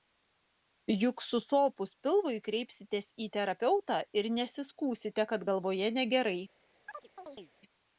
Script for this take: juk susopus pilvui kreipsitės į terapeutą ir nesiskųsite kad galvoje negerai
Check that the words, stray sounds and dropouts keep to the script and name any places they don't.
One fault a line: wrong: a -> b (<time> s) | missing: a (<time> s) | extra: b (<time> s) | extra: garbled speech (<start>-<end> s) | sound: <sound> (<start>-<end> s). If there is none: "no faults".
sound: chirp (6.9-7.5 s)